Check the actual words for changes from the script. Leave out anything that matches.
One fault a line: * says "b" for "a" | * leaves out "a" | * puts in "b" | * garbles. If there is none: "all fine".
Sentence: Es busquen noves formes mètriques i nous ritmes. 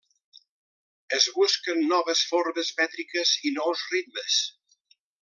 all fine